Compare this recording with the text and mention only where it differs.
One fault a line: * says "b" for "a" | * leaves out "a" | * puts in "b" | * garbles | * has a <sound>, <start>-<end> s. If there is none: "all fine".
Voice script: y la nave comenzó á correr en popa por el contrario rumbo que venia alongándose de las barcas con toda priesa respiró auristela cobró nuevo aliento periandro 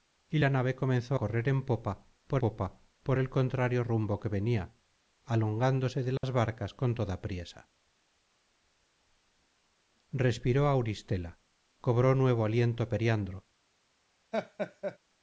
* leaves out "á"
* puts in "popa por"
* has a dropout, 6.2-6.2 s
* has a laugh, 14.3-15.0 s